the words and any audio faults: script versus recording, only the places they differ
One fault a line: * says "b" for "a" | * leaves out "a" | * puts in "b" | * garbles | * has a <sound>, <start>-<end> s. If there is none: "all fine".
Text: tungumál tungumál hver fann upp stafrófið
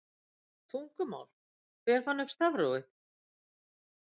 * leaves out "tungumál"